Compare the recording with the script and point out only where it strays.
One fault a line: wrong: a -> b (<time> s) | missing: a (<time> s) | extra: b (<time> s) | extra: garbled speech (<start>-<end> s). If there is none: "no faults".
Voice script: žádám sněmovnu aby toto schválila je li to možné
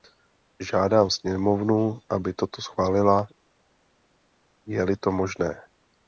no faults